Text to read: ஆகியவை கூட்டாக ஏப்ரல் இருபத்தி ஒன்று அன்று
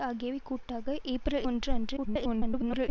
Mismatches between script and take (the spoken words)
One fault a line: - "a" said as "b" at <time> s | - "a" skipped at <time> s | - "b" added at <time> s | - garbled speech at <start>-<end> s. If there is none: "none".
- "இருபத்தி" skipped at 1.5 s
- garbled speech at 2.0-2.9 s